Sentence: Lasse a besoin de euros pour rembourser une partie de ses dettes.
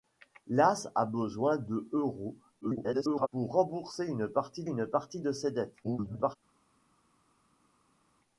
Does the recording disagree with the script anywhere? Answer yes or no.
yes